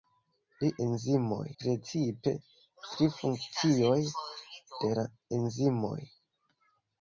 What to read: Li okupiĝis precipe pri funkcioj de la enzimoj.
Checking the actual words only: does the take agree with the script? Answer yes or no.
no